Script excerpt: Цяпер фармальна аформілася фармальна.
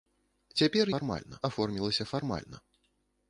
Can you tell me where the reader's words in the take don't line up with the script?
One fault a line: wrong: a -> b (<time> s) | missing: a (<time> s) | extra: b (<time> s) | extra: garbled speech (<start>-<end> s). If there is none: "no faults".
no faults